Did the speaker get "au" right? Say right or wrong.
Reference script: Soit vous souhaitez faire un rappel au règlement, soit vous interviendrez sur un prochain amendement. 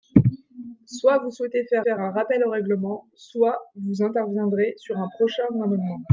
right